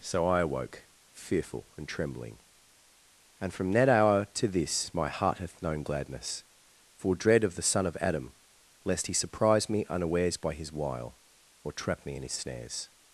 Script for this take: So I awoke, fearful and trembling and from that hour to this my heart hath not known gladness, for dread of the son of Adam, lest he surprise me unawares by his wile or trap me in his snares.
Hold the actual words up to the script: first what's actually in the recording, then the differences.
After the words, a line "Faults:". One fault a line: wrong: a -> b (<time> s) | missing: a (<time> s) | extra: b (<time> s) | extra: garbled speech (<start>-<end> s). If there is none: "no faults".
So I awoke, fearful and trembling and from that hour to this my heart hath known gladness, for dread of the son of Adam, lest he surprise me unawares by his wile or trap me in his snares.
Faults:
missing: not (5.6 s)